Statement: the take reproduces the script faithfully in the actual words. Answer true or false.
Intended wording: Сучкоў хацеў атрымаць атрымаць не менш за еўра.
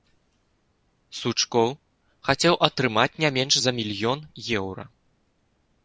false